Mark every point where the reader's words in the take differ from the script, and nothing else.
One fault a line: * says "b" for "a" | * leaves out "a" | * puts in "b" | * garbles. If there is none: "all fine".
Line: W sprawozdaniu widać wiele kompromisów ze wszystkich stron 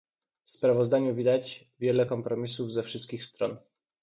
all fine